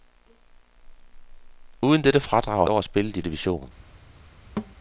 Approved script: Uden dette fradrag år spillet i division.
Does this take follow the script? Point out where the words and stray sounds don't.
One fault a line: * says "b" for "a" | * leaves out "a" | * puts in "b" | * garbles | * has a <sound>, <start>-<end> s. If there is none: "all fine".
* has a thud, 4.6-4.8 s